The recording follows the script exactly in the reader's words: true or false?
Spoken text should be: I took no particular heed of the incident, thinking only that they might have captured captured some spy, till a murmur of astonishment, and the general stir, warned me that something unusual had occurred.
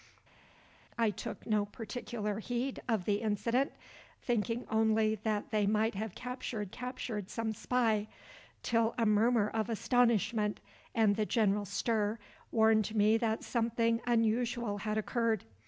true